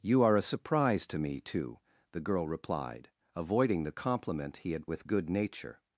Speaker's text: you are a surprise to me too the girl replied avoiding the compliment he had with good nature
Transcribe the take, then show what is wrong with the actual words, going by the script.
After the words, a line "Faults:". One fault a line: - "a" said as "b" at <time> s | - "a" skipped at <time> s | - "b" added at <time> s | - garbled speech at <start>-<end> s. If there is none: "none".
you are a surprise to me too the girl replied avoiding the compliment he had with good nature
Faults:
none